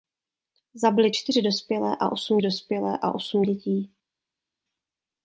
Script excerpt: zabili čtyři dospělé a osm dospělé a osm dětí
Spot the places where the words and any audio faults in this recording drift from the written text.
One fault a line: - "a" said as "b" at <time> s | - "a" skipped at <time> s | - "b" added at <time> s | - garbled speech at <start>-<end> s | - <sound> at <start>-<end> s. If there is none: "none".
none